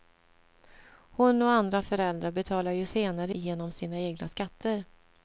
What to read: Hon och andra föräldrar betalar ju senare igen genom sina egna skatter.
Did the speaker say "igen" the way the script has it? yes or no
no